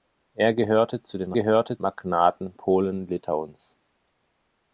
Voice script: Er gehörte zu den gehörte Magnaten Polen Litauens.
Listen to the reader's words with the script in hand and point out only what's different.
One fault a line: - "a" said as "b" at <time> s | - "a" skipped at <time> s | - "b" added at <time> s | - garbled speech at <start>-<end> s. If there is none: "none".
none